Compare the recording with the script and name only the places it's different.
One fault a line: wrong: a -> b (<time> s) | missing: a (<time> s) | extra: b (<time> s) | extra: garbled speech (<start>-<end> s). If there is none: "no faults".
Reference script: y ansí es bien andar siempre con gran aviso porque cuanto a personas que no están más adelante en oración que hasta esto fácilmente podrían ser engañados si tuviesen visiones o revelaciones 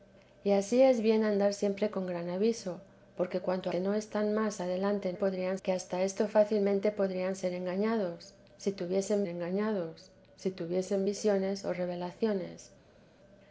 missing: a personas (3.7 s)
wrong: oración -> podrían (5.1 s)
extra: engañados si tuviesen (9.3 s)